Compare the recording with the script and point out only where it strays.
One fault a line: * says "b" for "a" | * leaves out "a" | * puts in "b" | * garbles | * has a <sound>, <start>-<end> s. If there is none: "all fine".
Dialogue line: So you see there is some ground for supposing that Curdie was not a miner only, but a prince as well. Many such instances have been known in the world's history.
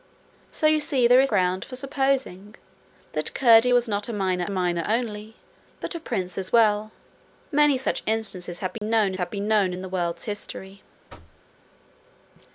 * leaves out "some"
* puts in "miner"
* has a dropout, 8.8-8.8 s
* puts in "have been known"
* has a thud, 11.1-11.4 s